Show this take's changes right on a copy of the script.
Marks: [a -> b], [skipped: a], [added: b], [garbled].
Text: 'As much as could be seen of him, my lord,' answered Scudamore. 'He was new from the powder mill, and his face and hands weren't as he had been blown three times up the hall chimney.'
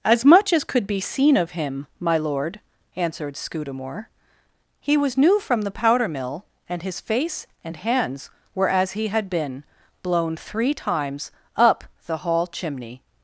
'As much as could be seen of him, my lord,' answered Scudamore. 'He was new from the powder mill, and his face and hands [weren't -> were] as he had been blown three times up the hall chimney.'